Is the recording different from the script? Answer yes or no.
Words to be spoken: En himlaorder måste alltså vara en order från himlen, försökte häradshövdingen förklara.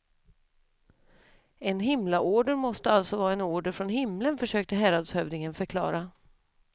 no